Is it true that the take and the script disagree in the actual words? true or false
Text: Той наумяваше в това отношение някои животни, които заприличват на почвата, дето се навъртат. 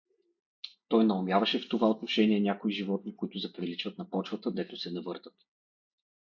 false